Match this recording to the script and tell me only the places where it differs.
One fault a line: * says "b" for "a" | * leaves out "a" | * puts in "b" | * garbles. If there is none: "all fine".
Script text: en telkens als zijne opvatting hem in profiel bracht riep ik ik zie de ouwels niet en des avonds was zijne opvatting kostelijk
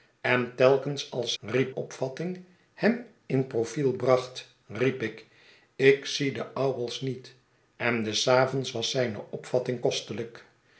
* says "riep" for "zijne"